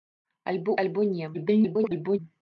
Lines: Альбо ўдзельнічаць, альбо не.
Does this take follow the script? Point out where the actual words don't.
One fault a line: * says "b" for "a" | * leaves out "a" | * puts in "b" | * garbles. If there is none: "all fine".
* leaves out "ўдзельнічаць"
* garbles